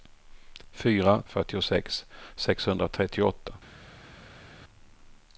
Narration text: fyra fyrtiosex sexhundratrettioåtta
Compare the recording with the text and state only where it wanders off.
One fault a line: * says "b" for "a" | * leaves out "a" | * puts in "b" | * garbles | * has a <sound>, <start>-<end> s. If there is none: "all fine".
all fine